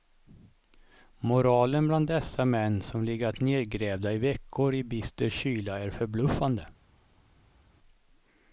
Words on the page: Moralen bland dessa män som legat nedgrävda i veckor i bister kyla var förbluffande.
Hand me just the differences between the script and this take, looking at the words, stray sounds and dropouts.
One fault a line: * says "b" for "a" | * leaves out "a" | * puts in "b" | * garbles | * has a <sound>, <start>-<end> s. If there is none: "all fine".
* says "är" for "var"